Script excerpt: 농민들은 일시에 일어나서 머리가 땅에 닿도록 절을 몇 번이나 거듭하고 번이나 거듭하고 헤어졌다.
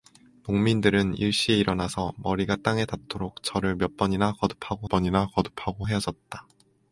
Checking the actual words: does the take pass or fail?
pass